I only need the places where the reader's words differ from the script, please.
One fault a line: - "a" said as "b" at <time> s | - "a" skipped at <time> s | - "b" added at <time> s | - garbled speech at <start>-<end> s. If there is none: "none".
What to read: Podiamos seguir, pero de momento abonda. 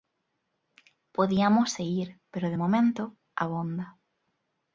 none